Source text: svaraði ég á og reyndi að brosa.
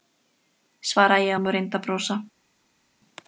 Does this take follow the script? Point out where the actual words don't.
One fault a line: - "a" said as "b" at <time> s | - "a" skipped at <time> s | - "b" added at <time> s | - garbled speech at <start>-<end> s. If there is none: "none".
none